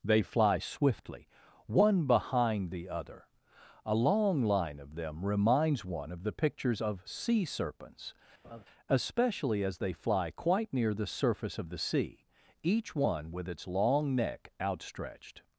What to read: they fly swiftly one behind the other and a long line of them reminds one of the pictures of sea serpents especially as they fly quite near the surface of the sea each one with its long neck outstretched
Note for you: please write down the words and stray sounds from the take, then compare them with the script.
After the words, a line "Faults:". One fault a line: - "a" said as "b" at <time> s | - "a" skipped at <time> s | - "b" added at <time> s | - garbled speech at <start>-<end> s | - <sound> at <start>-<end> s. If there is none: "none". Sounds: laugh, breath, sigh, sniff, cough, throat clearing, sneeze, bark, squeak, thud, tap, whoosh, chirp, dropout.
they fly swiftly one behind the other a long line of them reminds one of the pictures of sea serpents especially as they fly quite near the surface of the sea each one with its long neck outstretched
Faults:
- "and" skipped at 3.3 s
- laugh at 8.4-8.7 s